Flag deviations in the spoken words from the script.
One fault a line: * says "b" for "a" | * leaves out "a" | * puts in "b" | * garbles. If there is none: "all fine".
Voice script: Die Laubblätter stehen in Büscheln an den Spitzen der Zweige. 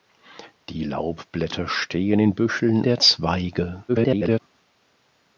* leaves out "an den Spitzen"
* garbles